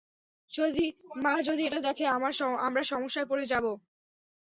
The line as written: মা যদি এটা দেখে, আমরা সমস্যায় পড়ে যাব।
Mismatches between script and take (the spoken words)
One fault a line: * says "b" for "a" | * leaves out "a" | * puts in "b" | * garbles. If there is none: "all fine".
all fine